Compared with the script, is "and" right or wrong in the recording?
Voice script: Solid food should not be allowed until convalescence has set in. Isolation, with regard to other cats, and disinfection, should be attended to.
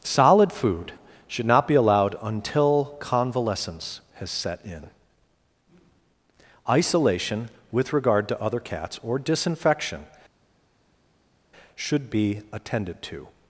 wrong